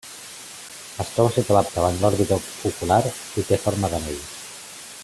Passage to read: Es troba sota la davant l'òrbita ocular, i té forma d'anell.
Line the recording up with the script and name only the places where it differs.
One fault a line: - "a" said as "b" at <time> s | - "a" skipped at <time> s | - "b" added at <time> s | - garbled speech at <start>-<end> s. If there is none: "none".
none